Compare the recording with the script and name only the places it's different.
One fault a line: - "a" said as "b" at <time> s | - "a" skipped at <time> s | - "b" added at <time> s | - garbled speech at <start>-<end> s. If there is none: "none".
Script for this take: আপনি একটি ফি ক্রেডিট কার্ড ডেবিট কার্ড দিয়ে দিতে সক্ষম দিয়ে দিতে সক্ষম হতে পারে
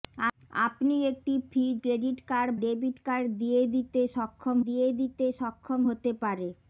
none